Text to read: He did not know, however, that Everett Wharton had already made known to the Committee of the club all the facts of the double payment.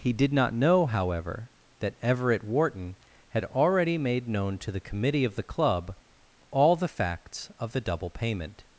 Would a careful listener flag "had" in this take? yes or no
no